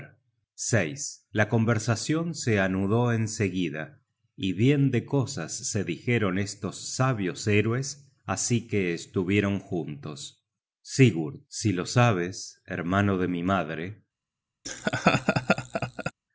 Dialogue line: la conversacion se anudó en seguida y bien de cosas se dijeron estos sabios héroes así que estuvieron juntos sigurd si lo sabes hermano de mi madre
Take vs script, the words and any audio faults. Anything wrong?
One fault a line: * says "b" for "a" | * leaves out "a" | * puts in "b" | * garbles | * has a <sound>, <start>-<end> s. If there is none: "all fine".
* has a laugh, 14.6-16.1 s